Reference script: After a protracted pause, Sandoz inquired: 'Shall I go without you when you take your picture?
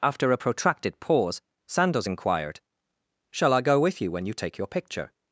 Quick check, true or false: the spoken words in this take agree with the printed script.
false